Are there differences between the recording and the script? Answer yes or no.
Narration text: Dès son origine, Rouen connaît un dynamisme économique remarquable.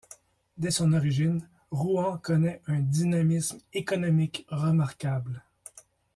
no